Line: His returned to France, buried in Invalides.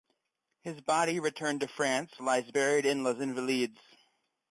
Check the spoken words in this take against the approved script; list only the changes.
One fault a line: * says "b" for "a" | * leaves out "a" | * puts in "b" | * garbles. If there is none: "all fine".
* puts in "body"
* puts in "lies"
* puts in "Les"